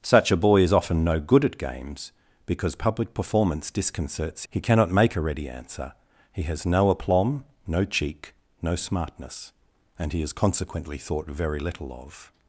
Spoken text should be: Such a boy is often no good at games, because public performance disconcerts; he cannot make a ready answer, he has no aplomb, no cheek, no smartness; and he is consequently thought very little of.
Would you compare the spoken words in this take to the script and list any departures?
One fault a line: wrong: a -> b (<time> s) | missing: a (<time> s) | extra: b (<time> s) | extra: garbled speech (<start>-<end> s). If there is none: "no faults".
no faults